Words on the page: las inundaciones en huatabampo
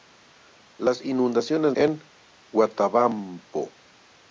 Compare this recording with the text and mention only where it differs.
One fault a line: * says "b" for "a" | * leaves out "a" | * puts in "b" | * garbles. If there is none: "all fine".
all fine